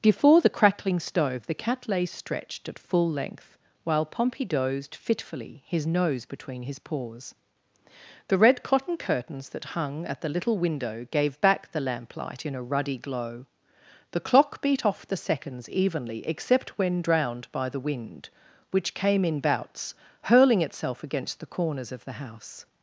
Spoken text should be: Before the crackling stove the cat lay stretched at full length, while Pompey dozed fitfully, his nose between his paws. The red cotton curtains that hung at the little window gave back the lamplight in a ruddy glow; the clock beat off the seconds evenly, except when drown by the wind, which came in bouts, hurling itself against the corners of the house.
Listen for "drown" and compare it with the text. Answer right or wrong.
wrong